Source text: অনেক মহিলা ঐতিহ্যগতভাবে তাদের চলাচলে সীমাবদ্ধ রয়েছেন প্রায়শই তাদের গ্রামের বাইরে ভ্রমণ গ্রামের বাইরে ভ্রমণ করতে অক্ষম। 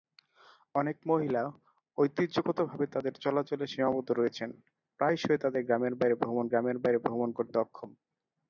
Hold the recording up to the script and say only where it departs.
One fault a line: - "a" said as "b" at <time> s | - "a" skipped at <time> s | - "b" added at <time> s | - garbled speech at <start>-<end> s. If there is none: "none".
none